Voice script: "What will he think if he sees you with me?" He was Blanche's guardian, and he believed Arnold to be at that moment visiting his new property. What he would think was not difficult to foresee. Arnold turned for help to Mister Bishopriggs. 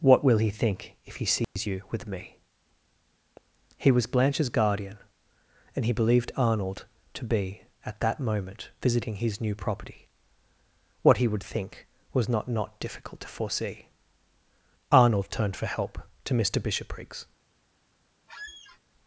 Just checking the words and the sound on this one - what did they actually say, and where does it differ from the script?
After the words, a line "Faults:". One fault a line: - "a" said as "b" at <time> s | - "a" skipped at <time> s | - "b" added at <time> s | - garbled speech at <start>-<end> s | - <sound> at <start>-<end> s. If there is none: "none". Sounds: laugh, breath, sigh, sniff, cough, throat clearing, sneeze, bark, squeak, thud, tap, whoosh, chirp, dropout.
"What will he think if he sees you with me?" He was Blanche's guardian, and he believed Arnold to be at that moment visiting his new property. What he would think was not not difficult to foresee. Arnold turned for help to Mister Bishopriggs.
Faults:
- dropout at 1.4-1.6 s
- "not" added at 12.5 s
- squeak at 18.3-18.8 s